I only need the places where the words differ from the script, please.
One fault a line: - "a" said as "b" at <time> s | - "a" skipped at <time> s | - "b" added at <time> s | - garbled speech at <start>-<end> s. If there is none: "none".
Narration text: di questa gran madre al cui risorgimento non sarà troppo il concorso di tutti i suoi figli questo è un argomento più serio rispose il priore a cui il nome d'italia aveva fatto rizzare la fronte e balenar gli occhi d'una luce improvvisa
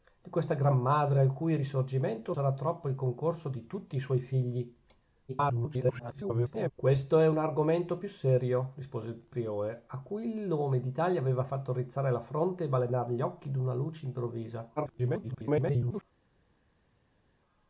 - "non" skipped at 2.3 s
- garbled speech at 5.3-6.7 s
- garbled speech at 14.8-16.0 s